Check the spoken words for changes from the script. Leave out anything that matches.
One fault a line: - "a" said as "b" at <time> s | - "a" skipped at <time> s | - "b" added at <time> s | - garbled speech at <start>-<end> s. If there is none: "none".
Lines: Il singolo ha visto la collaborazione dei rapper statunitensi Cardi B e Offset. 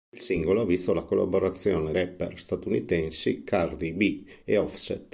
- "dei" skipped at 1.9 s